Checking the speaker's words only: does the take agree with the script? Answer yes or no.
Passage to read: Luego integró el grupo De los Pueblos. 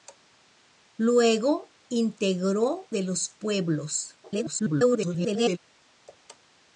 no